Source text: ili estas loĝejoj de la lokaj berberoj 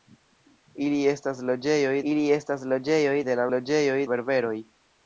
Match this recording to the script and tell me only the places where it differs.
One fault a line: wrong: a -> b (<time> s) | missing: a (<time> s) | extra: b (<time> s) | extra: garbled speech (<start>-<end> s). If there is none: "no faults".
extra: ili estas loĝejoj (2.1 s)
wrong: lokaj -> loĝejoj (3.5 s)